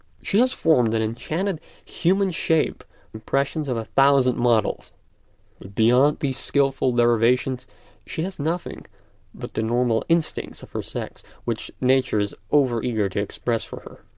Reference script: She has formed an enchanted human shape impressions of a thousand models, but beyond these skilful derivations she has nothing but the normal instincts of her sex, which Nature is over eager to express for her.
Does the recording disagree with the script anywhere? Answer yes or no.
no